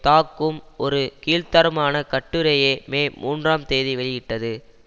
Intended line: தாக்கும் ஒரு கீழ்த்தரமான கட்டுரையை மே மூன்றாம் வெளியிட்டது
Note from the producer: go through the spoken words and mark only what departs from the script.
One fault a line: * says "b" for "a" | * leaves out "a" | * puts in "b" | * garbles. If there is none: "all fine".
* puts in "தேதி"